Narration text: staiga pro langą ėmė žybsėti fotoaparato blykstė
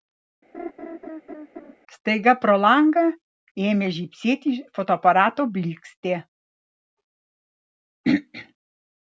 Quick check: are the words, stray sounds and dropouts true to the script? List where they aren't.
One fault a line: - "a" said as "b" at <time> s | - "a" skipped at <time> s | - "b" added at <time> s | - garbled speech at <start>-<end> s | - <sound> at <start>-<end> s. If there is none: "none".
- laugh at 0.5-1.7 s